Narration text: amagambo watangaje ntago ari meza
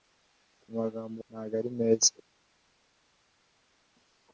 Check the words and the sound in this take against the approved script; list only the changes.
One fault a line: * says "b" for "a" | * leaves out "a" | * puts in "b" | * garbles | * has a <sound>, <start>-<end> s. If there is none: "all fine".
* leaves out "watangaje"